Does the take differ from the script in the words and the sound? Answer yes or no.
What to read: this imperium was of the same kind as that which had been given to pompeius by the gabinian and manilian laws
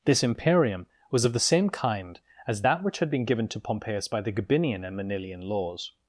no